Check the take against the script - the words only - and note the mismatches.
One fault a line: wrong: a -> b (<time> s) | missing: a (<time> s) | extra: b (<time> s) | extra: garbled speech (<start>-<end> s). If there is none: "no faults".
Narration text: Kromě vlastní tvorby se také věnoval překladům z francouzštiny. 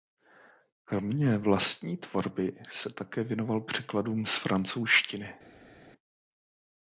no faults